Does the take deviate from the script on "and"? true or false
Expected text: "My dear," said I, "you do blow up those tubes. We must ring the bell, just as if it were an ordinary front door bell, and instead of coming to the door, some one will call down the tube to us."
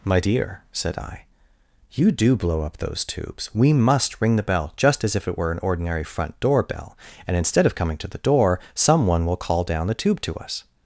false